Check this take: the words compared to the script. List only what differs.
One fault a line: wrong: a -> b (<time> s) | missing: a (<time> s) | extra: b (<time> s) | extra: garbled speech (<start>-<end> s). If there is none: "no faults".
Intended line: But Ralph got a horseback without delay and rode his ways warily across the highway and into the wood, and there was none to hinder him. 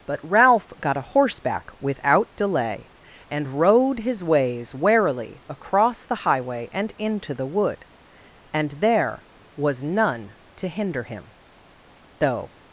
extra: Though (12.2 s)